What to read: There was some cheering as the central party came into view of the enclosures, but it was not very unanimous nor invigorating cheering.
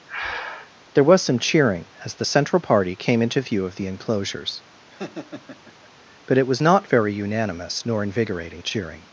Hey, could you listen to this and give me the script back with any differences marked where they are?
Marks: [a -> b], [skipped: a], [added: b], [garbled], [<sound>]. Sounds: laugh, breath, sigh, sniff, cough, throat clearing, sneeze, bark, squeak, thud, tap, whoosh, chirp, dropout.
[breath] There was some cheering as the central party came into view of the enclosures, [laugh] but it was not very unanimous nor invigorating cheering.